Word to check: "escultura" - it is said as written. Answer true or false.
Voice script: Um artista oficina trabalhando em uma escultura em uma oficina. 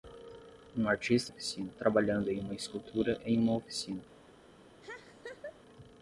true